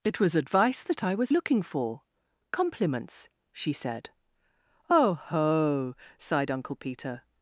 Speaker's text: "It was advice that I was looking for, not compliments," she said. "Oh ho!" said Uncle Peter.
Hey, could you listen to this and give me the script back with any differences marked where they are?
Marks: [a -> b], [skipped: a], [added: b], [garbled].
"It was advice that I was looking for, [skipped: not] compliments," she said. "Oh ho!" [said -> sighed] Uncle Peter.